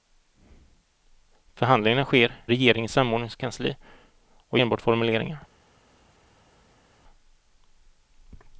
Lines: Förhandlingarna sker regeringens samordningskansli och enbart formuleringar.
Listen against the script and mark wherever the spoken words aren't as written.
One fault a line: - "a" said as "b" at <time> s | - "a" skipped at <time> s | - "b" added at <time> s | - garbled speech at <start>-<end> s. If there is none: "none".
none